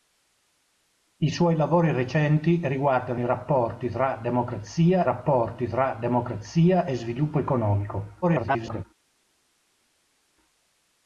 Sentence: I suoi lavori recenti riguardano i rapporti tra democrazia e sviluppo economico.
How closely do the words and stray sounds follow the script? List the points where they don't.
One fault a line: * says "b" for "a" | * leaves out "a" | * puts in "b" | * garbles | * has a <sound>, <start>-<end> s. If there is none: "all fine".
* puts in "rapporti tra democrazia"
* garbles